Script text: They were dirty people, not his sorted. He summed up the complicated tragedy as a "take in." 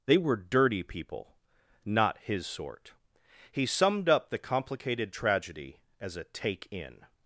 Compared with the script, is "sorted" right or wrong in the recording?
wrong